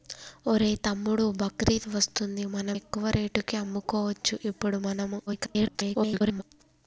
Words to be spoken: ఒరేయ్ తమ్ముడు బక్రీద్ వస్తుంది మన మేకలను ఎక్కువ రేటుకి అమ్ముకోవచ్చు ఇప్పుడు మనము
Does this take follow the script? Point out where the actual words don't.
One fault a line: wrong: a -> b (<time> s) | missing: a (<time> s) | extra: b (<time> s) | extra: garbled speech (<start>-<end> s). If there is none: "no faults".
missing: మేకలను (2.7 s)
extra: garbled speech (5.3-6.4 s)